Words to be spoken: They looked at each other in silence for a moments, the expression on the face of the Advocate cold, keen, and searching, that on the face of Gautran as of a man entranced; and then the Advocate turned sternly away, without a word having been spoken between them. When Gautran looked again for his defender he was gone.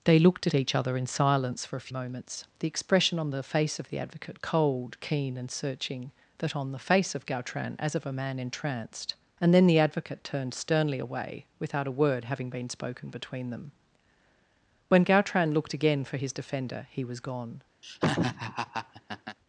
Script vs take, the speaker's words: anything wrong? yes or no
no